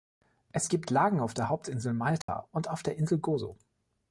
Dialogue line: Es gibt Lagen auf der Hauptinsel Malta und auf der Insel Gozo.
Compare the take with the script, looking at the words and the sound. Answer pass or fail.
fail